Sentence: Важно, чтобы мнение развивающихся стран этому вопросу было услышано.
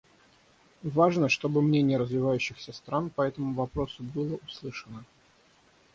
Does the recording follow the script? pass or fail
fail